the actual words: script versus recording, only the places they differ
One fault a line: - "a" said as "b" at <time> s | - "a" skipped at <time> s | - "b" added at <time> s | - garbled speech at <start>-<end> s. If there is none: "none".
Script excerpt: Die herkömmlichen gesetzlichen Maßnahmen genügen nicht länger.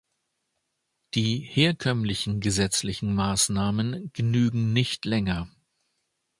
none